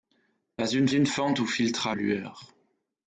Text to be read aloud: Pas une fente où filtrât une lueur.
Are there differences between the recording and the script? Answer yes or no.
yes